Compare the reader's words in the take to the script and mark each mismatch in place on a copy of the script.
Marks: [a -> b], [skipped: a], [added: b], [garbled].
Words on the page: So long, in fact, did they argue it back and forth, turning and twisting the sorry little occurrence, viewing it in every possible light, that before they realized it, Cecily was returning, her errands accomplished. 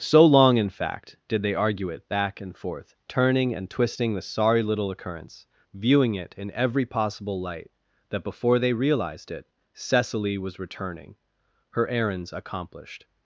So long, in fact, did they argue it back and forth, turning and twisting the sorry little occurrence, viewing it in every possible light, that before they realized it, Cecily was returning, her errands accomplished.